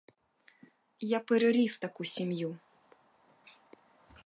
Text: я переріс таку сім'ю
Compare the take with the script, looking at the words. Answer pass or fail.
pass